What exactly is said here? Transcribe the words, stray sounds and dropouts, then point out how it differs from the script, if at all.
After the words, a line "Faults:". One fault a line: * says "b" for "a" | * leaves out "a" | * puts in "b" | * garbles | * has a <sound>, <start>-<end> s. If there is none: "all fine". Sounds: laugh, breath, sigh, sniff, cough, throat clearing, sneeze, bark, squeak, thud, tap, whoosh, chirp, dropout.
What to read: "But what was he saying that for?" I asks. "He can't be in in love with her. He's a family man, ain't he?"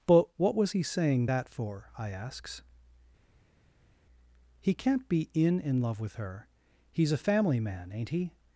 "But what was he saying that for?" I asks. "He can't be in in love with her. He's a family man, ain't he?"
Faults:
all fine